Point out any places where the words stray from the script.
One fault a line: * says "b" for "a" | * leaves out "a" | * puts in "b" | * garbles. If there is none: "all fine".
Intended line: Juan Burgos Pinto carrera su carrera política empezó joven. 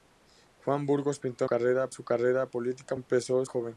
all fine